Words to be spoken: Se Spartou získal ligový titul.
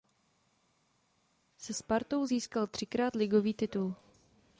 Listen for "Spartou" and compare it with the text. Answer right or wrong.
right